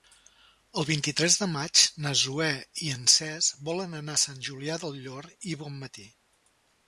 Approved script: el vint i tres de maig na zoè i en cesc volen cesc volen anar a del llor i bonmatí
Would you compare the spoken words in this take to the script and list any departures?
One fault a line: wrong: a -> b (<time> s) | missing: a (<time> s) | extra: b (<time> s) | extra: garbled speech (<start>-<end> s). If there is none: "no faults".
wrong: cesc volen anar a -> anar a sant julià (4.0 s)